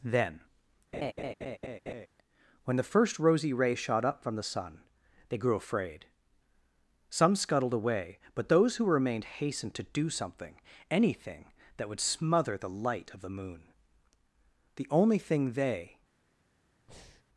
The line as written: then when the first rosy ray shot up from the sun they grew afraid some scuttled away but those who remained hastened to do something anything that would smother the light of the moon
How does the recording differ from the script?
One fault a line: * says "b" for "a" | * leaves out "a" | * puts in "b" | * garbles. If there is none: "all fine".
* puts in "the only thing they"